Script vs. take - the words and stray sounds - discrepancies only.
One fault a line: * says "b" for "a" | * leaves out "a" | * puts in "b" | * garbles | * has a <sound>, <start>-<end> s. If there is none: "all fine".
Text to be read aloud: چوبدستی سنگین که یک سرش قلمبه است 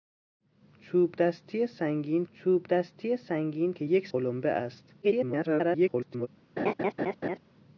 * puts in "چوبدستی سنگین"
* leaves out "سرش"
* garbles
* has a laugh, 6.6-7.4 s